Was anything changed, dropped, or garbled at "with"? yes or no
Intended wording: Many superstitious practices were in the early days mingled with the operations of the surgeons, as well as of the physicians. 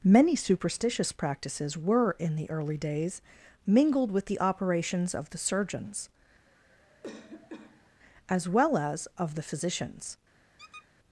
no